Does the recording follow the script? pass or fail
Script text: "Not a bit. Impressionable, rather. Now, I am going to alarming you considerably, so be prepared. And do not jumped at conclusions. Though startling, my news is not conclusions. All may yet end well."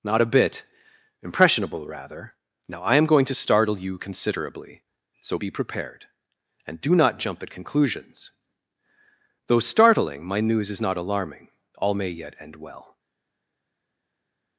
fail